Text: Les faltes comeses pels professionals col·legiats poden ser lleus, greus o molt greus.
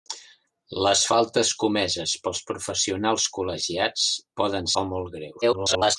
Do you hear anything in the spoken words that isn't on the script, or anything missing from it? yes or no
yes